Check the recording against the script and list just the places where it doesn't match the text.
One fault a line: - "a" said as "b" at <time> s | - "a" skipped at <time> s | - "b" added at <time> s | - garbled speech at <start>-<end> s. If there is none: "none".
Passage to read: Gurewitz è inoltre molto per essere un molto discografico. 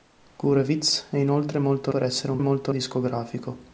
none